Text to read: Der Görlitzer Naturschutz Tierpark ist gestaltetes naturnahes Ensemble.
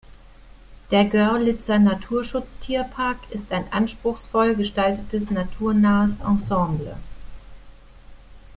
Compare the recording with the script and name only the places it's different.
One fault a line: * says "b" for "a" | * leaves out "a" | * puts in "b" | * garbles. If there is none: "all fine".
* puts in "ein anspruchsvoll"